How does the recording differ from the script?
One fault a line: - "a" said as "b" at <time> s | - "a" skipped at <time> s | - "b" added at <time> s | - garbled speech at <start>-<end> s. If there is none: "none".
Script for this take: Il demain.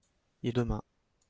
none